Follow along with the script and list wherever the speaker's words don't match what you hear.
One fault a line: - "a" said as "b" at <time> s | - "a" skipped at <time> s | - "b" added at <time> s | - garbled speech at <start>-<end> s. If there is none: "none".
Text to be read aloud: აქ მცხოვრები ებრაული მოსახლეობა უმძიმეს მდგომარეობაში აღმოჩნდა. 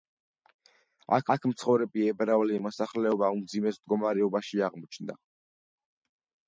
- "აქ" added at 1.3 s